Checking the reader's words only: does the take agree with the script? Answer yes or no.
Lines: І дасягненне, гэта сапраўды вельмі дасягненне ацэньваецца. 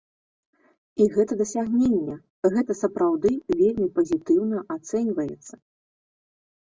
no